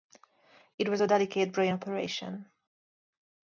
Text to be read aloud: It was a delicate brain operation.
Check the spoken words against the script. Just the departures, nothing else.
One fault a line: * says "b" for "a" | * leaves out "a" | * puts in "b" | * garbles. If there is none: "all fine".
all fine